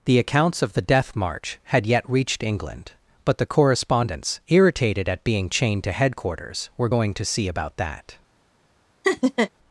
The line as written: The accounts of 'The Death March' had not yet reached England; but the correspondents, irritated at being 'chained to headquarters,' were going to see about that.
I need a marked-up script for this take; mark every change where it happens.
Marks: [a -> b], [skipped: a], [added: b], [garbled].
The accounts of 'The Death March' had [skipped: not] yet reached England; but the correspondents, irritated at being 'chained to headquarters,' were going to see about that.